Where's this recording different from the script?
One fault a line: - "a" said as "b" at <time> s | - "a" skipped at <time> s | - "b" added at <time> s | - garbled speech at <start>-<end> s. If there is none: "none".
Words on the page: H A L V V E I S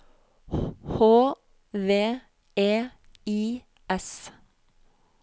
- "A L V" skipped at 1.4 s